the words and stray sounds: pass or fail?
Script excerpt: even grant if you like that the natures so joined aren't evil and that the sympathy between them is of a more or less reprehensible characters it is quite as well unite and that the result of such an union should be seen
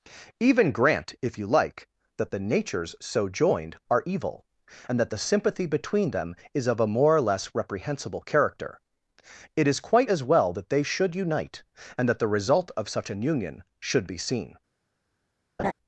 fail